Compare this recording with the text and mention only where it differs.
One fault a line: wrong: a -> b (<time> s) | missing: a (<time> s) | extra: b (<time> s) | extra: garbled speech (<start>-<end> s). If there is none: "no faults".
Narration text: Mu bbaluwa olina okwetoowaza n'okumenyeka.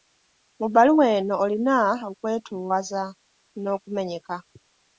extra: eno (1.2 s)